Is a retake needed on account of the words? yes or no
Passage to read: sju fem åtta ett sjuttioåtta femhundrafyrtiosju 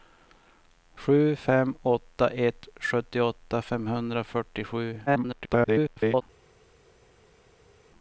yes